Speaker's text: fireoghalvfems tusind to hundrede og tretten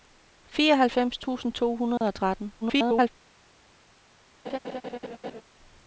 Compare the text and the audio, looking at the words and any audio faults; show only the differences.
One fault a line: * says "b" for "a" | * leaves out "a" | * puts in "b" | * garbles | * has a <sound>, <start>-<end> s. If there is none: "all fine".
* has a dropout, 2.0-2.0 s
* garbles
* has a laugh, 4.4-5.4 s